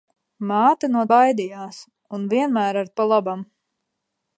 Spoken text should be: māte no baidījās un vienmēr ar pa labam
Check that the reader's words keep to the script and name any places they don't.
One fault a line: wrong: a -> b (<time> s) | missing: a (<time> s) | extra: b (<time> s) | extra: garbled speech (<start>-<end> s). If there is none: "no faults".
no faults